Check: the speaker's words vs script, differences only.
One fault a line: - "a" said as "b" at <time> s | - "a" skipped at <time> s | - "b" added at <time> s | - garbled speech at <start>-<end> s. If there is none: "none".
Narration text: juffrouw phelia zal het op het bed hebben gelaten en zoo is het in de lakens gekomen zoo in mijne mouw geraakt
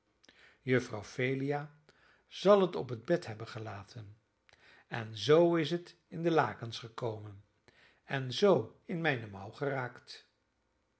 - "en" added at 8.0 s